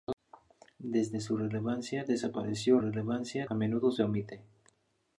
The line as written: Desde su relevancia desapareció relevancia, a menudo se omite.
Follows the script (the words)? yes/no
yes